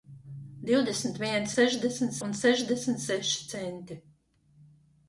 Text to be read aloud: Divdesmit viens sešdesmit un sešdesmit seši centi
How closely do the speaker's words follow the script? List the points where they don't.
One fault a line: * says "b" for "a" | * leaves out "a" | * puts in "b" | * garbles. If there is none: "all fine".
all fine